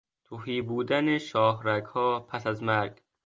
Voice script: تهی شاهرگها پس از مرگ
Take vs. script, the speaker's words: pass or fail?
fail